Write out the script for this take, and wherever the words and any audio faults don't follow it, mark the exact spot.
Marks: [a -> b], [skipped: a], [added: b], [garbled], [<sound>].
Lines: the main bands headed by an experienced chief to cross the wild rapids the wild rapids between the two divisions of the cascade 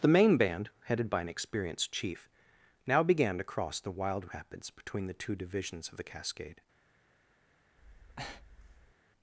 the main [bands -> band] headed by an experienced chief [added: now began] to cross the wild rapids [skipped: the wild rapids] between the two divisions of the cascade [breath]